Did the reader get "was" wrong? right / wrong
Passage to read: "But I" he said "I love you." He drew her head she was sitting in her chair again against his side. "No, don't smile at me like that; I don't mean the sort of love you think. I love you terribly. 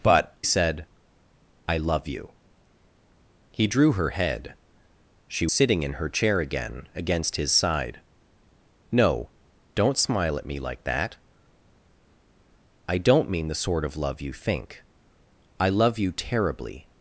wrong